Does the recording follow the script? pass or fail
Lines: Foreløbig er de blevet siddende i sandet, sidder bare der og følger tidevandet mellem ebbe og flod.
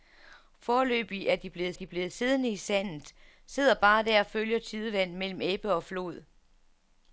fail